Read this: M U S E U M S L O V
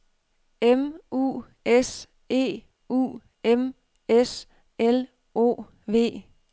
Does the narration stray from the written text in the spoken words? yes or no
no